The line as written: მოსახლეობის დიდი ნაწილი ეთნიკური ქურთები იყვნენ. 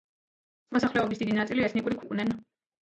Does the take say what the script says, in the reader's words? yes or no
no